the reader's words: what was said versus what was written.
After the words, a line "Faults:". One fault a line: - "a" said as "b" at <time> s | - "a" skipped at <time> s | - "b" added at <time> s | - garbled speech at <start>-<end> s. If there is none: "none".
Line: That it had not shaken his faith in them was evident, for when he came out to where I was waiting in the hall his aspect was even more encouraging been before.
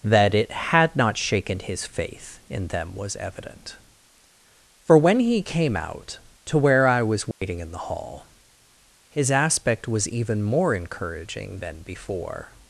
That it had not shaken his faith in them was evident, for when he came out to where I was waiting in the hall his aspect was even more encouraging been before.
Faults:
none